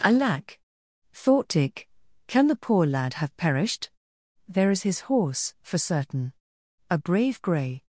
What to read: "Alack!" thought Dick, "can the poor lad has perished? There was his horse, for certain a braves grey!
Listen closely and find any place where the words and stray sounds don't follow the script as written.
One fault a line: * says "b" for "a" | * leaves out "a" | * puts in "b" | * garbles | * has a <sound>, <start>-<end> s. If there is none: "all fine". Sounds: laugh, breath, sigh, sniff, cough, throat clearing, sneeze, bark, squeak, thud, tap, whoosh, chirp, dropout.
* says "have" for "has"
* says "is" for "was"
* says "brave" for "braves"